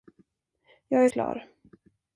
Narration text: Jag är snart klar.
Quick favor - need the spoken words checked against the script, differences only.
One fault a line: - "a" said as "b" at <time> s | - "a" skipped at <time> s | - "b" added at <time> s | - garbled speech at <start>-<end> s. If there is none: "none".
- "snart" skipped at 1.1 s